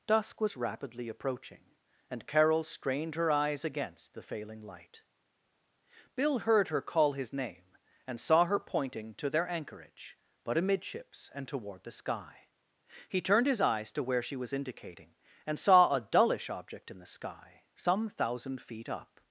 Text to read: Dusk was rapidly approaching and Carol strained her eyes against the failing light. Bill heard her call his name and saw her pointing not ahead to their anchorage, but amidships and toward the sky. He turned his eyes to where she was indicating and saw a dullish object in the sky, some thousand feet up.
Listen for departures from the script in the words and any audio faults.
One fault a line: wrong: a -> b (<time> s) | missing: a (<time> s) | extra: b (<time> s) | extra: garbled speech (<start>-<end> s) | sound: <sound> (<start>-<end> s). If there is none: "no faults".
missing: not ahead (9.1 s)